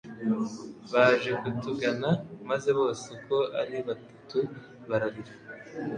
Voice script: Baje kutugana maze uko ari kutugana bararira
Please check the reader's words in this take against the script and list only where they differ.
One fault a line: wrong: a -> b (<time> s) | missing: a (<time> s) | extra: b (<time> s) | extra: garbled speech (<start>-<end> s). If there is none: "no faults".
extra: bose (2.8 s)
wrong: kutugana -> batatu (3.9 s)